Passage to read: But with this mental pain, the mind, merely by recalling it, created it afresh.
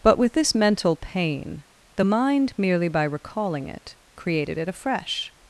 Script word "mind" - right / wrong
right